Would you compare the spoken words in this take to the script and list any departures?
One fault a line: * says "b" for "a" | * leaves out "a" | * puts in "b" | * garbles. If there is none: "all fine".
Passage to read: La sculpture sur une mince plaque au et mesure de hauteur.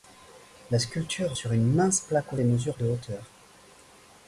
all fine